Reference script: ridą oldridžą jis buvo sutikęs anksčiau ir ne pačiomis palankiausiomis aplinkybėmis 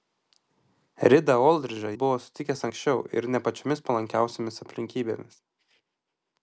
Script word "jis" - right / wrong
wrong